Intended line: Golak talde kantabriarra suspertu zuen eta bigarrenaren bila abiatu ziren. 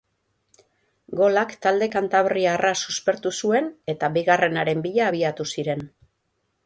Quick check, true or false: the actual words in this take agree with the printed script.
true